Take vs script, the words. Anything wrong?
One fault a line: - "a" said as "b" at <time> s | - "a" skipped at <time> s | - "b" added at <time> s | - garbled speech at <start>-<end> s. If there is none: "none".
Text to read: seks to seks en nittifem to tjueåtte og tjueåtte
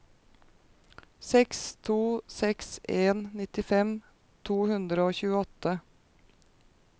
- "tjueåtte" said as "hundre" at 4.7 s